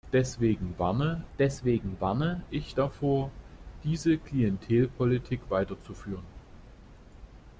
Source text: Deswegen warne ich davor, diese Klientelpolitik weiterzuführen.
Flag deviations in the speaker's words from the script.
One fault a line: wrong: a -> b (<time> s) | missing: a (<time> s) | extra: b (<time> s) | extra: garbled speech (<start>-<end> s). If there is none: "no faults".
extra: deswegen warne (1.4 s)